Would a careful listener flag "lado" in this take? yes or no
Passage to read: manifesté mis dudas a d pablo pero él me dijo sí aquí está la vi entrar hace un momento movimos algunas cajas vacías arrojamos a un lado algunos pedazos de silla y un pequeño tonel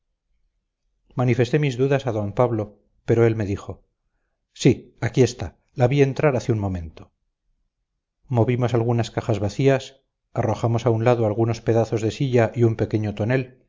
no